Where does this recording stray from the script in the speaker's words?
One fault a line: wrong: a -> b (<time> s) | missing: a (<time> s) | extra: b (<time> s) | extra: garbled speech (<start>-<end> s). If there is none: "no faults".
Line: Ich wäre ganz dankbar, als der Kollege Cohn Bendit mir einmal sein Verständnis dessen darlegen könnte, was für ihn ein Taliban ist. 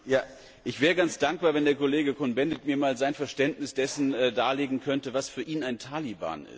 wrong: als -> wenn (1.5 s)